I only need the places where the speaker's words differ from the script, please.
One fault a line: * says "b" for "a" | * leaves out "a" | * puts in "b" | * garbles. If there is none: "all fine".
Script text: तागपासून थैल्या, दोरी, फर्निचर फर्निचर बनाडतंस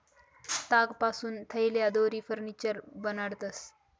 * leaves out "फर्निचर"